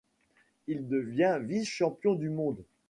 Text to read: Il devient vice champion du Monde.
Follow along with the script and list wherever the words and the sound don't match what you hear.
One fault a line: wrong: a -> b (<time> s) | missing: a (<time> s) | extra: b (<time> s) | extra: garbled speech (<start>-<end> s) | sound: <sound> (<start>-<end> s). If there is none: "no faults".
no faults